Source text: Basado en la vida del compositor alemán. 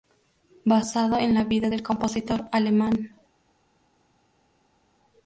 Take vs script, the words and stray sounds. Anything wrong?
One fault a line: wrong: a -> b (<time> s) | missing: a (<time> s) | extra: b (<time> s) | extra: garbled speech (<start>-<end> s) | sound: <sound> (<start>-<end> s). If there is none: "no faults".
no faults